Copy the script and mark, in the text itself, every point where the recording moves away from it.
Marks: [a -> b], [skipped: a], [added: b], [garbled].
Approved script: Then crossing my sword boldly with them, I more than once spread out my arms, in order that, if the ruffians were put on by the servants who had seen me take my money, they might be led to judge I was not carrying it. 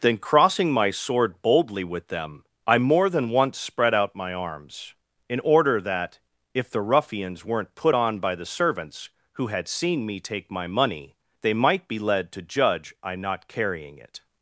Then crossing my sword boldly with them, I more than once spread out my arms, in order that, if the ruffians [were -> weren't] put on by the servants who had seen me take my money, they might be led to judge I [skipped: was] not carrying it.